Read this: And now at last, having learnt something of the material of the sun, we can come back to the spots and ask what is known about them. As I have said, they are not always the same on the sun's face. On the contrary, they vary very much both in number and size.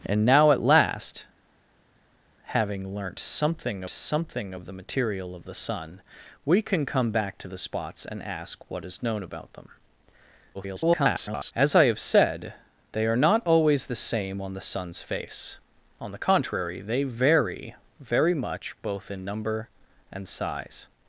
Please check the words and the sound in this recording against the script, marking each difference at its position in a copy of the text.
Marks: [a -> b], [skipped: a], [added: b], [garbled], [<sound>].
And now at last, having learnt something [added: something] of the material of the sun, we can come back to the spots and ask what is known about them. [garbled] As I have said, they are not always the same on the sun's face. On the contrary, they vary very much both in number and size.